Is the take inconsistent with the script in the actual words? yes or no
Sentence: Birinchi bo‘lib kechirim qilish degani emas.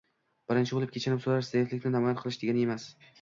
yes